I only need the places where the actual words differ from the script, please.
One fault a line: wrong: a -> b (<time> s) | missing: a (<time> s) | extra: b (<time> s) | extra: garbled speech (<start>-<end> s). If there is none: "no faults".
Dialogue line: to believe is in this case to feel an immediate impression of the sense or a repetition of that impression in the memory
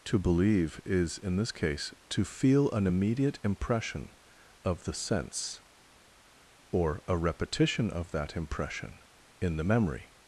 no faults